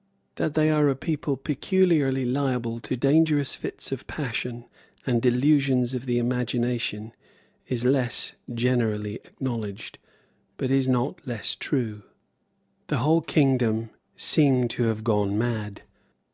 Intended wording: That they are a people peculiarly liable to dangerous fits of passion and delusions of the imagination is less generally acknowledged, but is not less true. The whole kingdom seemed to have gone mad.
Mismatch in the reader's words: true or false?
false